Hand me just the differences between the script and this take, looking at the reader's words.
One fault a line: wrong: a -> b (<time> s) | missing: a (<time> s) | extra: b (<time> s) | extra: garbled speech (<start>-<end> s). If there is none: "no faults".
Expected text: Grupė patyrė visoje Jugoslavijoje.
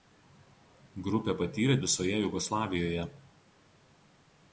no faults